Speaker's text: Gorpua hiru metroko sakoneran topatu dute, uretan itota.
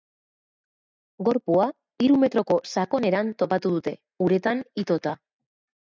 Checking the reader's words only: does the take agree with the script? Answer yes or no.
yes